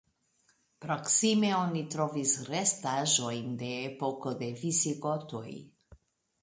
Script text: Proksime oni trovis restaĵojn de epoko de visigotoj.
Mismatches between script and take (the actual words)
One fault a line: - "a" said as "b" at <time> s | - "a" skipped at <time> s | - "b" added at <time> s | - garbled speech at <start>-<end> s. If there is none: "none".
none